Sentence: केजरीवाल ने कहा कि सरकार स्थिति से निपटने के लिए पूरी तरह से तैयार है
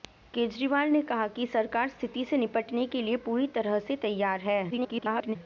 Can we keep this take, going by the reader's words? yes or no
no